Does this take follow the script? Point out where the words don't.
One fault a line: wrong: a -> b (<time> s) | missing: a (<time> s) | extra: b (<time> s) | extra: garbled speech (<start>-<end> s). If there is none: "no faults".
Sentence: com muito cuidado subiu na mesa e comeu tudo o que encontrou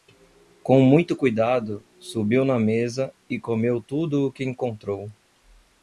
no faults